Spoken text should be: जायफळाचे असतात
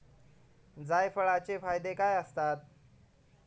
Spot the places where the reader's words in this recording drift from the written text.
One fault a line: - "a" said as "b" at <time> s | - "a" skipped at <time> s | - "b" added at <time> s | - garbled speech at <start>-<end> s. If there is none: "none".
- "फायदे काय" added at 1.5 s